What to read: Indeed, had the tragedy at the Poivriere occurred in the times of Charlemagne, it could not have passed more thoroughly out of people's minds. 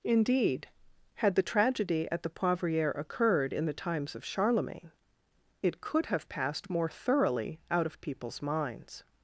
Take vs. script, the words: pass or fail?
fail